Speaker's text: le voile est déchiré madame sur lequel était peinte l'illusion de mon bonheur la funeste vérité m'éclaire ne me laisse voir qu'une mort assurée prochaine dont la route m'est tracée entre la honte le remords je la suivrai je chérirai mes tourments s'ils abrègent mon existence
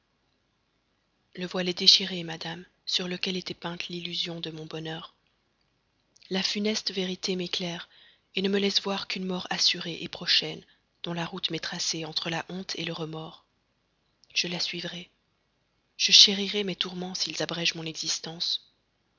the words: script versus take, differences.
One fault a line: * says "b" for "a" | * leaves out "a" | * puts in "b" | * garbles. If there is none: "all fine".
all fine